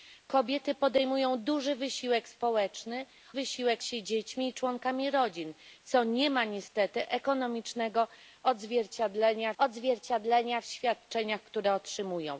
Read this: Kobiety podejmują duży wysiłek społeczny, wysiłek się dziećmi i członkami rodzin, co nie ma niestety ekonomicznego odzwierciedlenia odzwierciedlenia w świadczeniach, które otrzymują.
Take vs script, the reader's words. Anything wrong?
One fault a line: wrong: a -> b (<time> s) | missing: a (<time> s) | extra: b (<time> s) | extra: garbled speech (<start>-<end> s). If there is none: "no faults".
no faults